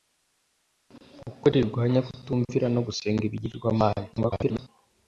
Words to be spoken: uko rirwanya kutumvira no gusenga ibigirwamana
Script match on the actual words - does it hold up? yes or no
no